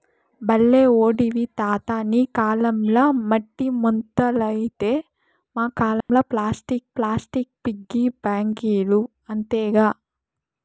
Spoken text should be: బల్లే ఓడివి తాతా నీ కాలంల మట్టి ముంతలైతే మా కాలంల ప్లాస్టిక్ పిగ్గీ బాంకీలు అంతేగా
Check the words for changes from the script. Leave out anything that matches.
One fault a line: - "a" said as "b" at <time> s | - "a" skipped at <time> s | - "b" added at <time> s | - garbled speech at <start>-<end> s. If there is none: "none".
- "ప్లాస్టిక్" added at 7.0 s